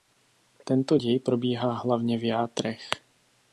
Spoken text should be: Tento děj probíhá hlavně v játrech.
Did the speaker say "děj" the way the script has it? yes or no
yes